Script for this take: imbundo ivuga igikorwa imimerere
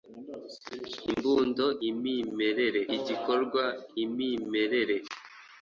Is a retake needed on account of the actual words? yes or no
yes